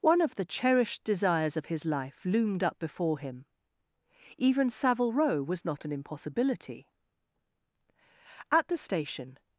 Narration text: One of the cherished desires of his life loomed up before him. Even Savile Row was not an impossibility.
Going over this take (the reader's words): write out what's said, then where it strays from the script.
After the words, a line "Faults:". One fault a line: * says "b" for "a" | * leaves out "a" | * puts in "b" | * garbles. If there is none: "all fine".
One of the cherished desires of his life loomed up before him. Even Savile Row was not an impossibility. At the station
Faults:
* puts in "At the station"